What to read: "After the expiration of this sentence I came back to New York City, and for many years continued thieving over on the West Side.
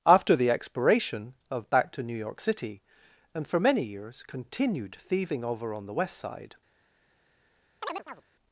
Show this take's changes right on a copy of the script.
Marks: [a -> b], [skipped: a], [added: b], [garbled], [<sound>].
"After the expiration of [skipped: this sentence I came] back to New York City, and for many years continued thieving over on the West Side. [chirp]